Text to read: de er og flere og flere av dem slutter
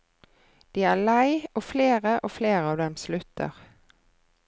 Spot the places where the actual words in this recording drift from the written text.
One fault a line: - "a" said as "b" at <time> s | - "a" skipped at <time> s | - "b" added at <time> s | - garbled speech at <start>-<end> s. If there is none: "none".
- "lei" added at 1.1 s